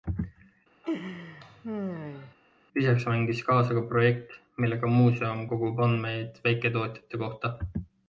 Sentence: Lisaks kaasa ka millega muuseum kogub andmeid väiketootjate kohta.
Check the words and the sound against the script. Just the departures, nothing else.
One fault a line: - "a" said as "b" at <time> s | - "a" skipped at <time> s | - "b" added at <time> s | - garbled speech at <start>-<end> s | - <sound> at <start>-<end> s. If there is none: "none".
- laugh at 0.8-2.3 s
- "mängis" added at 3.1 s
- "projekt" added at 3.9 s